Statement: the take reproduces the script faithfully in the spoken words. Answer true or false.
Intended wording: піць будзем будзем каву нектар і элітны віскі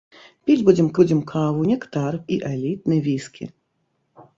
true